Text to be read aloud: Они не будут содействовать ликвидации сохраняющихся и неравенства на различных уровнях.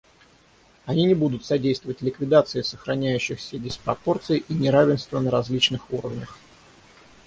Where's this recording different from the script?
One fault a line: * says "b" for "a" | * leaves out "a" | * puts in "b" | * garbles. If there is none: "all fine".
* puts in "диспропорций"